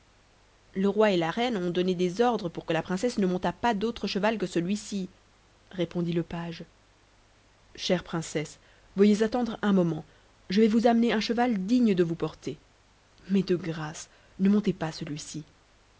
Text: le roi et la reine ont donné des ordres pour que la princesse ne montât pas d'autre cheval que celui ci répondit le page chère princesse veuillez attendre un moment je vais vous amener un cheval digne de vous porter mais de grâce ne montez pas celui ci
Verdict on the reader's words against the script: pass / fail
pass